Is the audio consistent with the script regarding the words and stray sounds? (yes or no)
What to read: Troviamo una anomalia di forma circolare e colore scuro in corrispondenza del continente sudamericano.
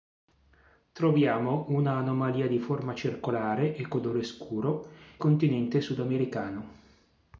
no